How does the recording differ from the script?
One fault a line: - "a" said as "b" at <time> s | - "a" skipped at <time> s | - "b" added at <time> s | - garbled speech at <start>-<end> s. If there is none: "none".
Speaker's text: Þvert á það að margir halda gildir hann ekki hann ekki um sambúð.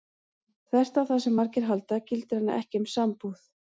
- "að" said as "sem" at 1.3 s
- "hann ekki" skipped at 2.9 s